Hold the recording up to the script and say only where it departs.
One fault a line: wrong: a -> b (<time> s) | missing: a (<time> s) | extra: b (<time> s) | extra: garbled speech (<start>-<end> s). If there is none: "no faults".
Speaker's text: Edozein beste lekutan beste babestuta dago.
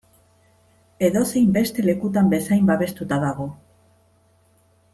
wrong: beste -> bezain (2.3 s)